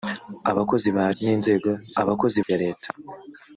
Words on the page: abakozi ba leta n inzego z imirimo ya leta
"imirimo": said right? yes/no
no